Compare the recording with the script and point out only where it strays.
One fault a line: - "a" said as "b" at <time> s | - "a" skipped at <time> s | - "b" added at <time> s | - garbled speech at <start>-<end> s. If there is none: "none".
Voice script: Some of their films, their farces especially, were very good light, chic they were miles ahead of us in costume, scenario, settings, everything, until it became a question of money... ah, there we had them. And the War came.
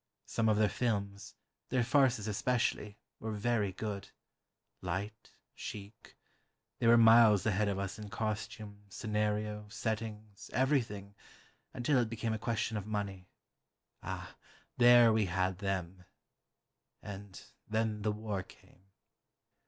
- "then" added at 17.7 s